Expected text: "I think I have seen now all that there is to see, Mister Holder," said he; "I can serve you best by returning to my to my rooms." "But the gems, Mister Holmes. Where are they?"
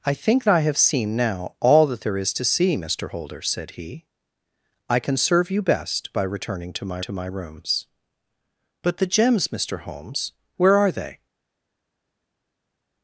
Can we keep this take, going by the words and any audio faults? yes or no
yes